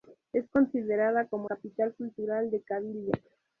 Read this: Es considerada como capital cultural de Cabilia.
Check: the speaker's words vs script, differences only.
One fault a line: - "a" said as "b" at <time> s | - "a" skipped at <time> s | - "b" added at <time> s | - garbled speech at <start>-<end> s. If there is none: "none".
none